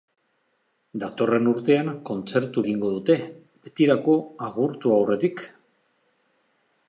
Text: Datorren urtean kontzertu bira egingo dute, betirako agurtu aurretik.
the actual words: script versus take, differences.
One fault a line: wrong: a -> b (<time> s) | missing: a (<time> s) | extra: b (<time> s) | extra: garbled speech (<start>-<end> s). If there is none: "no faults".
missing: bira (2.6 s)